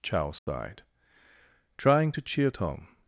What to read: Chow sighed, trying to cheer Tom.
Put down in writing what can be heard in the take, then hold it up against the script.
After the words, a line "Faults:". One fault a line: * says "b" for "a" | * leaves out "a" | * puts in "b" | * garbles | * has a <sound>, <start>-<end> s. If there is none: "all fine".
Chow sighed, trying to cheer Tom.
Faults:
* has a dropout, 0.4-0.5 s